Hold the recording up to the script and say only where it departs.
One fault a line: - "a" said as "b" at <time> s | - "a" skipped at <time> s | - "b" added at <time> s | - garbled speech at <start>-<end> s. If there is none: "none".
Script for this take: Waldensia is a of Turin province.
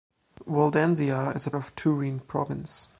none